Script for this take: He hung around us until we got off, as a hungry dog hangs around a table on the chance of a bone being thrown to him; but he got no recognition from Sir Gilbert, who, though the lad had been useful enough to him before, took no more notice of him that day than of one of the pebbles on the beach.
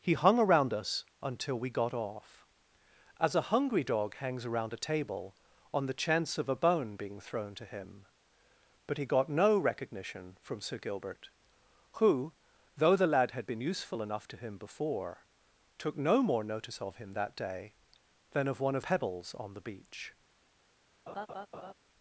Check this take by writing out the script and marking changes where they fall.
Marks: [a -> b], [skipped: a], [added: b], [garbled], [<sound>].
He hung around us until we got off, as a hungry dog hangs around a table on the chance of a bone being thrown to him; but he got no recognition from Sir Gilbert, who, though the lad had been useful enough to him before, took no more notice of him that day than of one of [skipped: the] pebbles on the beach. [laugh]